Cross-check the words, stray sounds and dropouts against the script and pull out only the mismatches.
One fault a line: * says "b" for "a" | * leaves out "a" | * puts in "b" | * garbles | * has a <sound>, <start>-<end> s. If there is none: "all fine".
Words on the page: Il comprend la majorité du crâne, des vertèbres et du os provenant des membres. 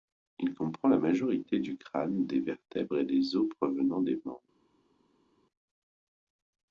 * says "des" for "du"